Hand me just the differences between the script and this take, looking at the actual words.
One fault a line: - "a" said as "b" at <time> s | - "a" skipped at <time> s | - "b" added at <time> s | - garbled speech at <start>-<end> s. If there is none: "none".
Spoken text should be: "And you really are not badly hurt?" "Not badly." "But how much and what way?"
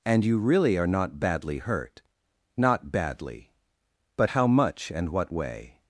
none